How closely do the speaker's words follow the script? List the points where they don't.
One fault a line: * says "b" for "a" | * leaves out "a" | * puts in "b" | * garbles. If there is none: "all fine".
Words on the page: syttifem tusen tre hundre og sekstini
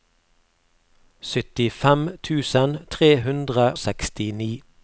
* leaves out "og"